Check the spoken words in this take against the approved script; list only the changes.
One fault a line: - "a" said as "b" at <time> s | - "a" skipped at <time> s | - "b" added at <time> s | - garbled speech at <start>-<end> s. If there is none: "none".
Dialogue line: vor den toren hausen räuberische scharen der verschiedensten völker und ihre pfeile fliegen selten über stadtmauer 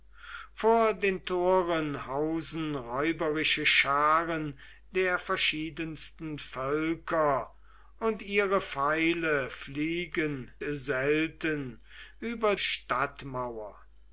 none